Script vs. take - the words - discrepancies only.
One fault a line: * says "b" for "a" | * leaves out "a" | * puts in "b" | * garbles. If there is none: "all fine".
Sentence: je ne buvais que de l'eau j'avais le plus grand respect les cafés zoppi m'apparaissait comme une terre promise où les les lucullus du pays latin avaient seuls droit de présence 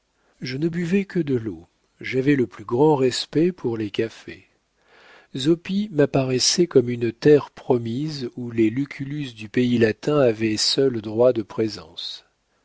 * puts in "pour"
* leaves out "les"